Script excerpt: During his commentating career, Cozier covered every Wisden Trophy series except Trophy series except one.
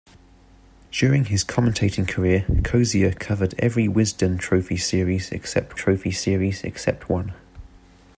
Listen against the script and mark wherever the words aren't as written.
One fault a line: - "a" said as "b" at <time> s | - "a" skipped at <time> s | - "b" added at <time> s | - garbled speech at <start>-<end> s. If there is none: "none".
none